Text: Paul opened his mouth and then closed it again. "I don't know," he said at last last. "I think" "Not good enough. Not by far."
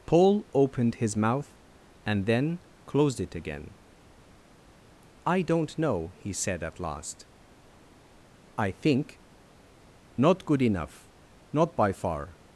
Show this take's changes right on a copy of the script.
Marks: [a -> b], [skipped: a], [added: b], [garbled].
Paul opened his mouth and then closed it again. "I don't know," he said at last [skipped: last.] "I think" "Not good enough. Not by far."